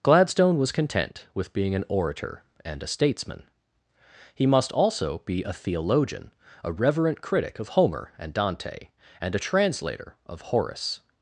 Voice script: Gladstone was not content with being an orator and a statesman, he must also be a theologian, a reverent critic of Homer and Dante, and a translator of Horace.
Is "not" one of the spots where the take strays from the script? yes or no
yes